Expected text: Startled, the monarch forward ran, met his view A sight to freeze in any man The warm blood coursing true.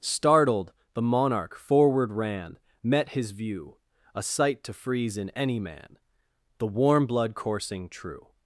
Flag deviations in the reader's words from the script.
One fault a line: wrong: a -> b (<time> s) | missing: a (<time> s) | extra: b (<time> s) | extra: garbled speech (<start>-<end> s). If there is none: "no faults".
no faults